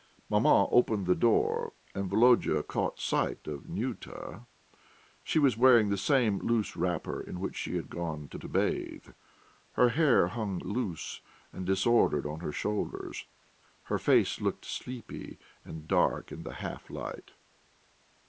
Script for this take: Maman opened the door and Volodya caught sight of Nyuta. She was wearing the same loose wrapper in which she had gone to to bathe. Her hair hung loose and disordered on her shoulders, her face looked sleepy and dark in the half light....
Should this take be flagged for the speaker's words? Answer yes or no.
no